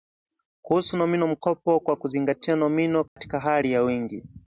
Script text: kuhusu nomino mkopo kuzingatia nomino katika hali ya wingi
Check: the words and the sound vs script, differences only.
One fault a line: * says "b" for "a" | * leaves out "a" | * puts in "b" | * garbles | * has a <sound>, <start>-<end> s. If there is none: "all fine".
* puts in "kwa"
* has a dropout, 3.1-3.2 s